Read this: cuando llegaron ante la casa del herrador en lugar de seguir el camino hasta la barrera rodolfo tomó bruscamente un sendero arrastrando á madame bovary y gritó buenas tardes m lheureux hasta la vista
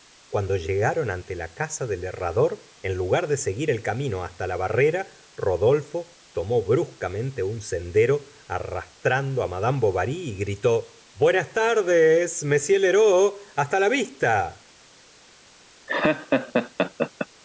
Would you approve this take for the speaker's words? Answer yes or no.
yes